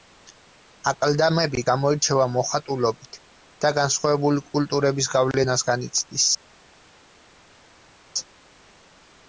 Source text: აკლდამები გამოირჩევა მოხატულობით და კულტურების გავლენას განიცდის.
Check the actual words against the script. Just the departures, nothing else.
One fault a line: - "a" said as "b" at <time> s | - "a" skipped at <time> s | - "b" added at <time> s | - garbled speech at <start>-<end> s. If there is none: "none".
- "განსხვავებული" added at 3.8 s